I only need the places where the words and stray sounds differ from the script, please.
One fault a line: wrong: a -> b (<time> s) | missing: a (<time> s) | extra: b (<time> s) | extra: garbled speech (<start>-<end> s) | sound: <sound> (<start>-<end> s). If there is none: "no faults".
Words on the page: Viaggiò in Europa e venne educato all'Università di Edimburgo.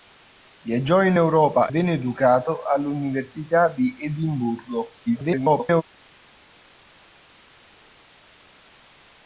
missing: e (1.7 s)
extra: garbled speech (5.1-5.8 s)